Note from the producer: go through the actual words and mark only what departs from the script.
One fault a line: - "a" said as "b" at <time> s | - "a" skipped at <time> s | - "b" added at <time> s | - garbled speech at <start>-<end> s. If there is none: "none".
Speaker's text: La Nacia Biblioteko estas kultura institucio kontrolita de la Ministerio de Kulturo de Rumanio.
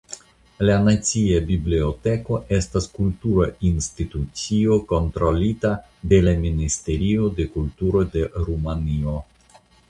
none